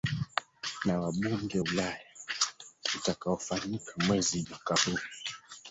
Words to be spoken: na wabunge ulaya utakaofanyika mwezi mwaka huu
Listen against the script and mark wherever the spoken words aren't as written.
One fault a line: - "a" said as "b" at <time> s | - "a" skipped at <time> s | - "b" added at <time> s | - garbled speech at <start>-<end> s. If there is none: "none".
none